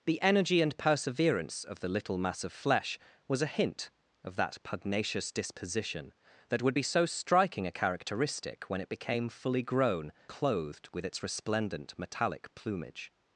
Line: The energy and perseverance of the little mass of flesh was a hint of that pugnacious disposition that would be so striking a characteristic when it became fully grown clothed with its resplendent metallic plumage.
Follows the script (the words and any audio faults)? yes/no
yes